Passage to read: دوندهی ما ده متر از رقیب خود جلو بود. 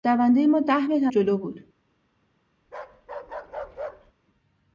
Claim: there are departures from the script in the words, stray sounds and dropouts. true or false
true